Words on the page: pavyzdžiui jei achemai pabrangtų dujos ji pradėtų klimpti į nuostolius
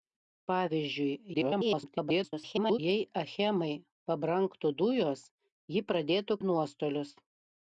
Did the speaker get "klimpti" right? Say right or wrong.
wrong